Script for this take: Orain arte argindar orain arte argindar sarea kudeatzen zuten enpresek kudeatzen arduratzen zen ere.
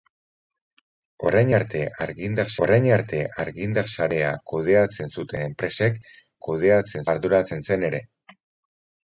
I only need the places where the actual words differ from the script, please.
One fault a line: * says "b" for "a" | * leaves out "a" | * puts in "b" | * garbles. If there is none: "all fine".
all fine